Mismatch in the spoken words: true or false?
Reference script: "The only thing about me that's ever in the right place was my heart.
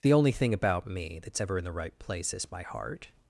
true